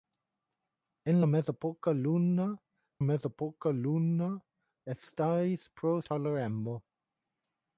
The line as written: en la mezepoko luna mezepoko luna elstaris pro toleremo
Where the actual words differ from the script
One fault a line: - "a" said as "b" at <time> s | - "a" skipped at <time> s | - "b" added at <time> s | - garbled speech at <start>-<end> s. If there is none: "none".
none